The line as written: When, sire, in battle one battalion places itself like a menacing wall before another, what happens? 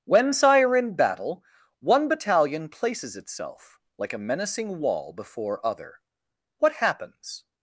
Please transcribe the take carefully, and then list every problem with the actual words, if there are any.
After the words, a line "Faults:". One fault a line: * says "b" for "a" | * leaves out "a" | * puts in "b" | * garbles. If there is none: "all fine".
When, sire, in battle one battalion places itself like a menacing wall before other, what happens?
Faults:
* says "other" for "another"